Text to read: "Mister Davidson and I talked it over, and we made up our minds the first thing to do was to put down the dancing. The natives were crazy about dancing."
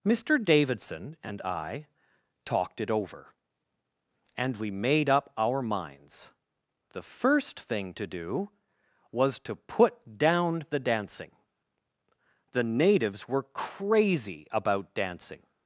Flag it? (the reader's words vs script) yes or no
no